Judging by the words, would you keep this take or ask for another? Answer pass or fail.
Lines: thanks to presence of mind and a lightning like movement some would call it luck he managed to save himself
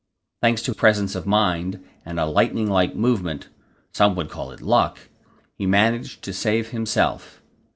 pass